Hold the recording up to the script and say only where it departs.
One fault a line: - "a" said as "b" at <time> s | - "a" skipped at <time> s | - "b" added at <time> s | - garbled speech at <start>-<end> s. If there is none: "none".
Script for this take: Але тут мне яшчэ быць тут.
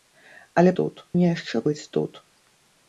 none